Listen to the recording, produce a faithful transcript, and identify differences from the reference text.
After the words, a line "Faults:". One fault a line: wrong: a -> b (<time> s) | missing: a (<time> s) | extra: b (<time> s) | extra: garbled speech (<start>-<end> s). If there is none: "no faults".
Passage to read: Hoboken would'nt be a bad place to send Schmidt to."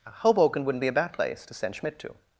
Hoboken would'nt be a bad place to send Schmidt to."
Faults:
no faults